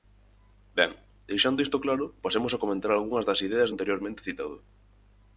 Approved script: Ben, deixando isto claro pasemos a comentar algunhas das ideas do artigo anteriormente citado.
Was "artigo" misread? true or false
true